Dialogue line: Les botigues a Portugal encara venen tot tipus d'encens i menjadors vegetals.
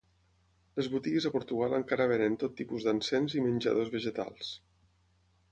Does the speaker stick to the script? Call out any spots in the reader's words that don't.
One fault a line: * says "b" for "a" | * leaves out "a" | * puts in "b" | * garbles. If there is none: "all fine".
all fine